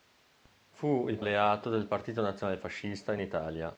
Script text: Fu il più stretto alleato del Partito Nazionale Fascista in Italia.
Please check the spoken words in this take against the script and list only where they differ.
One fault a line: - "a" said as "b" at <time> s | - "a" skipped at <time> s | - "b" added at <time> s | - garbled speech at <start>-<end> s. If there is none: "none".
- "più stretto" skipped at 1.2 s